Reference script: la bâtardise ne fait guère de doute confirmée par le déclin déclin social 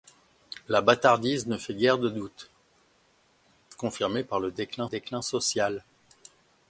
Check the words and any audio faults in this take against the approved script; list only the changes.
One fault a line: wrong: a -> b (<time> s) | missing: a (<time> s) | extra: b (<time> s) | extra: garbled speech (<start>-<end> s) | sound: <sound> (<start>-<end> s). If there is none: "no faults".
no faults